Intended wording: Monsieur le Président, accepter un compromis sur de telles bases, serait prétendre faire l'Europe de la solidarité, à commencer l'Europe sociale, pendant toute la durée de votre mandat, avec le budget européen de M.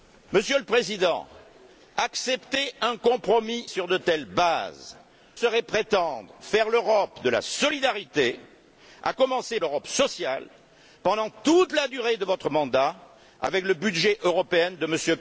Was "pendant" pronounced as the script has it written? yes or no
yes